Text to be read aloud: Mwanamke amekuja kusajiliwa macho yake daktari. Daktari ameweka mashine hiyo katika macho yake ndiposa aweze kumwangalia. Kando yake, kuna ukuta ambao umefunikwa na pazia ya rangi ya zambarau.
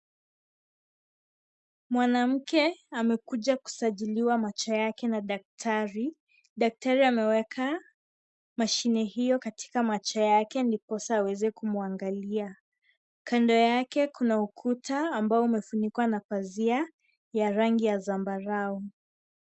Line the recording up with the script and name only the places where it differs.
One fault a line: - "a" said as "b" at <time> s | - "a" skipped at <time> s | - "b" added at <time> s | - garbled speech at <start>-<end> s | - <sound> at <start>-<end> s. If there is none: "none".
- "na" added at 5.1 s